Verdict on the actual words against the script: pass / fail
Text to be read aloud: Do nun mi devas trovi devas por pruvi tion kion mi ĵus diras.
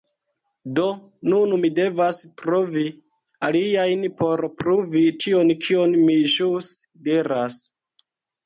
fail